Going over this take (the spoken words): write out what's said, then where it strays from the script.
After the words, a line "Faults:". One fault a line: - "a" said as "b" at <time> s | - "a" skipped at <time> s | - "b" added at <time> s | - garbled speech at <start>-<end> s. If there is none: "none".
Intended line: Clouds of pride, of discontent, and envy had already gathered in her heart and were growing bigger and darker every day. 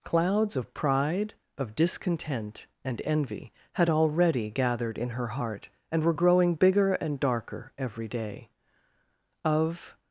Clouds of pride, of discontent, and envy had already gathered in her heart and were growing bigger and darker every day. Of
Faults:
- "Of" added at 9.4 s